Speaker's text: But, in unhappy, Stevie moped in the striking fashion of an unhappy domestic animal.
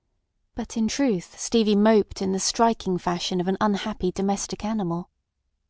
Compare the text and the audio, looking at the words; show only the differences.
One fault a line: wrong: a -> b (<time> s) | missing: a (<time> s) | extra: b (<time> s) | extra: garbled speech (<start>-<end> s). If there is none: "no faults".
wrong: unhappy -> truth (0.9 s)